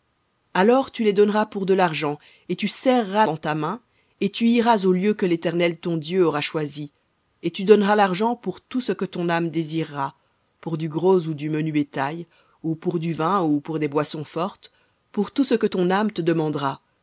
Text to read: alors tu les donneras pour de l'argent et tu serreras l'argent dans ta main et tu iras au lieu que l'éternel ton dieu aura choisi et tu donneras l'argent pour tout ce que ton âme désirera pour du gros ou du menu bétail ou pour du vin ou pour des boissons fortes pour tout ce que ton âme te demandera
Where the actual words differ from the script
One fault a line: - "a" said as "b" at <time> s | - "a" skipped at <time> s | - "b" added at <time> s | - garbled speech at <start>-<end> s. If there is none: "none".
- "l'argent" skipped at 3.3 s